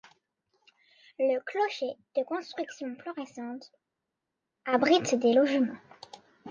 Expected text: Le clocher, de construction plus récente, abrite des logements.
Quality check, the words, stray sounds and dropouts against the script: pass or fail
pass